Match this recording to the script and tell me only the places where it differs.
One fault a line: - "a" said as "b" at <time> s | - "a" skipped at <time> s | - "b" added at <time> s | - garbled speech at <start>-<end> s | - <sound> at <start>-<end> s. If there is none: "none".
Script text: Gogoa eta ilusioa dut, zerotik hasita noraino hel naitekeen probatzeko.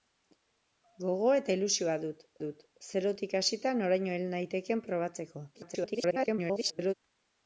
- "dut" added at 2.4 s
- garbled speech at 5.5-6.9 s